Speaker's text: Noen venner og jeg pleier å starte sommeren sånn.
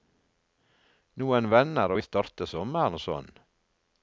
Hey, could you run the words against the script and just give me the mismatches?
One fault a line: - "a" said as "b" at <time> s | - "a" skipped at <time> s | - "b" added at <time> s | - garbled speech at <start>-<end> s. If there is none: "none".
- "jeg pleier" skipped at 2.0 s